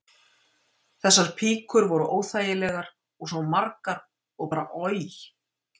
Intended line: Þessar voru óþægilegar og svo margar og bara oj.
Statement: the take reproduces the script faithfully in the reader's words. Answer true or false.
false